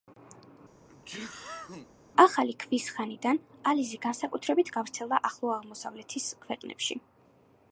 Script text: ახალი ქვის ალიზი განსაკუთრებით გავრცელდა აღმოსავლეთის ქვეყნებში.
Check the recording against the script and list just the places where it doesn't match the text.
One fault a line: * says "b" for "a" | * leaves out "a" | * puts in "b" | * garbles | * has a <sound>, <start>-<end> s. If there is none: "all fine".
* has a sneeze, 0.8-1.9 s
* puts in "ხანიდან"
* puts in "ახლო"